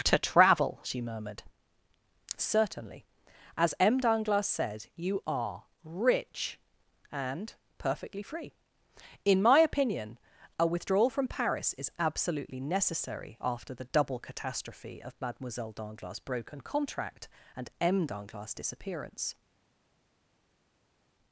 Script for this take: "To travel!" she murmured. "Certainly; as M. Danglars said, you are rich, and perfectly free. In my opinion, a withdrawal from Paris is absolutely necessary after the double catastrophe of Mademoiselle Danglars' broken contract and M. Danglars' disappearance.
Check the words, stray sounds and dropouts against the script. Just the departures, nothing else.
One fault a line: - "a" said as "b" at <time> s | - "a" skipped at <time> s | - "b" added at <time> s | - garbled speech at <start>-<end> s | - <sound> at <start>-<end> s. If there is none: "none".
none